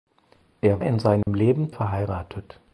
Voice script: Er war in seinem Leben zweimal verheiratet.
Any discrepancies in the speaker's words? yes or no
yes